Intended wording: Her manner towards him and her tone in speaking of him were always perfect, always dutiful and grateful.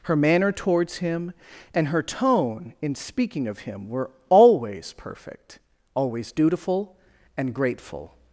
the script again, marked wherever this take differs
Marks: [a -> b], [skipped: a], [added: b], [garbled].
Her manner towards him and her tone in speaking of him were always perfect, always dutiful and grateful.